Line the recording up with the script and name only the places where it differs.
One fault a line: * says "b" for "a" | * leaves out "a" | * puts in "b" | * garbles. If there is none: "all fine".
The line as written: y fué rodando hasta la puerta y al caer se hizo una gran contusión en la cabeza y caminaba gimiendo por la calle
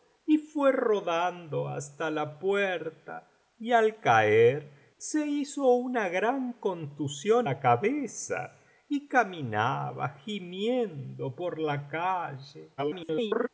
* leaves out "en"
* garbles